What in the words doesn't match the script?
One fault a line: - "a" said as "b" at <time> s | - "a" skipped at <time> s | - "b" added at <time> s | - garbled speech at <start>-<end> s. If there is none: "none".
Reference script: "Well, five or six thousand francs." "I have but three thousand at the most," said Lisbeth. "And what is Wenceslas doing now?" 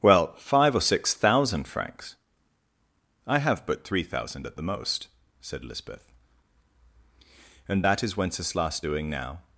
- "what" said as "that" at 7.8 s